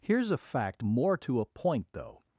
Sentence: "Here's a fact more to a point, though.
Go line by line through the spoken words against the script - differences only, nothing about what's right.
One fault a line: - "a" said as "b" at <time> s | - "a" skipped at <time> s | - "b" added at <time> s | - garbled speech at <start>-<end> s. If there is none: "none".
none